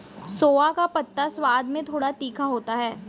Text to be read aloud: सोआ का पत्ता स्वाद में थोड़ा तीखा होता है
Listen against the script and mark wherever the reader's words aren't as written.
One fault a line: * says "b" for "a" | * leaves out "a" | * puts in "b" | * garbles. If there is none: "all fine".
all fine